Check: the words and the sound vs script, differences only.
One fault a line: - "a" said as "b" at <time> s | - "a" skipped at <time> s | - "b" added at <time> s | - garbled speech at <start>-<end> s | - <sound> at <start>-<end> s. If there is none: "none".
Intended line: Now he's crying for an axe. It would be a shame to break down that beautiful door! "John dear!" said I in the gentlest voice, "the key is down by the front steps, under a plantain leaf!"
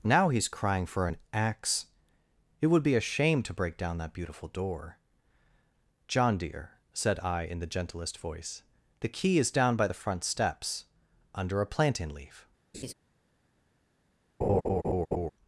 - laugh at 12.7-12.9 s
- laugh at 14.4-15.3 s